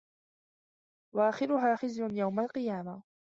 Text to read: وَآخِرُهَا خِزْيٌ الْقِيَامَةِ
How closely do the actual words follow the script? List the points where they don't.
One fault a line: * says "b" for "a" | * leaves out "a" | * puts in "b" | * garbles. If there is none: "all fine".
* puts in "يَوْمَ"